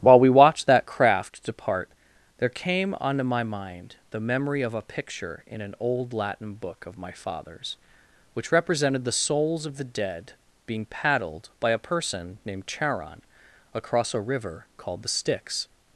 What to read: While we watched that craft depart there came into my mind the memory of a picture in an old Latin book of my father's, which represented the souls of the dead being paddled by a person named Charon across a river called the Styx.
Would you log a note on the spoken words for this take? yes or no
yes